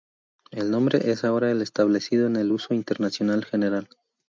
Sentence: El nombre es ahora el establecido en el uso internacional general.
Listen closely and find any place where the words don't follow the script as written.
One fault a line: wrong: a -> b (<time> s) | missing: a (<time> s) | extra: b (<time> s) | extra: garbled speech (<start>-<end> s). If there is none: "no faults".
no faults